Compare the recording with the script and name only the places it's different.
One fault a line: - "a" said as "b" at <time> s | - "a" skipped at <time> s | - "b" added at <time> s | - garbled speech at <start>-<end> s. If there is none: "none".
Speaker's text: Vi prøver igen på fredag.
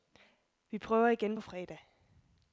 none